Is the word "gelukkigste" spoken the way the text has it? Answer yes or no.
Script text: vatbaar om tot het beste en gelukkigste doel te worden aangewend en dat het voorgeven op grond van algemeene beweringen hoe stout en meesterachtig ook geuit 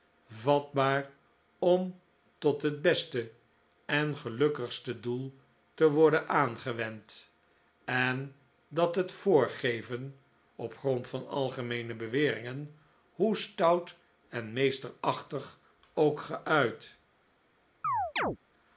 yes